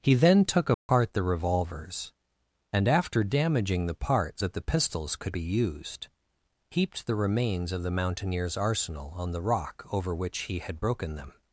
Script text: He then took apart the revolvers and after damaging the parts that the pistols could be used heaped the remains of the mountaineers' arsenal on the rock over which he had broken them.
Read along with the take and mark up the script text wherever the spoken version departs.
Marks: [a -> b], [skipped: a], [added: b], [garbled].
He then took apart the revolvers and after damaging the parts that the pistols could be used heaped the remains of the mountaineers' arsenal on the rock over which he had broken them.